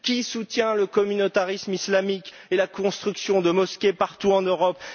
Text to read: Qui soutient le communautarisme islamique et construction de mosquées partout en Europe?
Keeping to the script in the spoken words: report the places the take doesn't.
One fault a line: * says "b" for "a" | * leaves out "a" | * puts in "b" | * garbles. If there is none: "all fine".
* puts in "la"